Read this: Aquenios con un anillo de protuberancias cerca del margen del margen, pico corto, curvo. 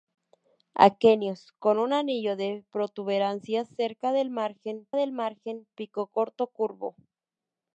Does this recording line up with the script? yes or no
yes